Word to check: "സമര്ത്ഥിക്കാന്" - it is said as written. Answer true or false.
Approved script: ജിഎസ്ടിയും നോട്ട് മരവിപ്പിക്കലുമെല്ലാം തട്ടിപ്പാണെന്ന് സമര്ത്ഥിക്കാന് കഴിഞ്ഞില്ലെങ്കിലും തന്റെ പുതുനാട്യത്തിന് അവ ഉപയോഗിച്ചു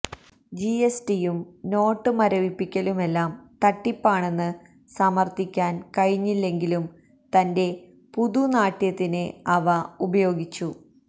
true